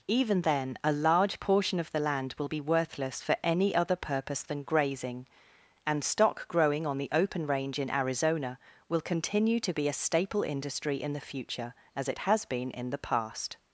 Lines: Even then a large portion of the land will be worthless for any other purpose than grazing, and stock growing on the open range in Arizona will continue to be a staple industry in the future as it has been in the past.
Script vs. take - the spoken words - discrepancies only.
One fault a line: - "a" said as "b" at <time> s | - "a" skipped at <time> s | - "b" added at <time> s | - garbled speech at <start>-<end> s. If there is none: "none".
none